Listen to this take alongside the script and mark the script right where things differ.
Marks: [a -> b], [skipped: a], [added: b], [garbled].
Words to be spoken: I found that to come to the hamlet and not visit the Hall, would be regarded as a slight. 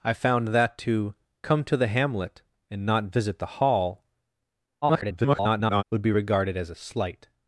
I found that to come to the hamlet and not visit the Hall, [garbled] would be regarded as a slight.